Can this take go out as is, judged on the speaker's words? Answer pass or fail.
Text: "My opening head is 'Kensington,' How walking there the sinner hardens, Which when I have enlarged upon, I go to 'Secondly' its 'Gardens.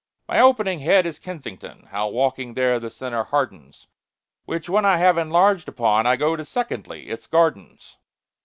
pass